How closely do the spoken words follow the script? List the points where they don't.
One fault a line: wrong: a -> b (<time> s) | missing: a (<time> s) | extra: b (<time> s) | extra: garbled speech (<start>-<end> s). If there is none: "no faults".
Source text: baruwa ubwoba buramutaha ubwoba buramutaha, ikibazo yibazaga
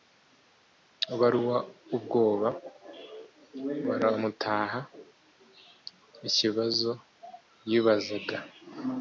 missing: ubwoba buramutaha (4.8 s)